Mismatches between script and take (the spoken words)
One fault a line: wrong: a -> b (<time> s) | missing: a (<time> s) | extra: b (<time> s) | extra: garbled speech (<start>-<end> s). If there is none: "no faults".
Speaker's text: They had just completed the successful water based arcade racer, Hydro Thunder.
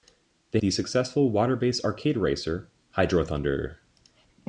missing: had just completed (0.6 s)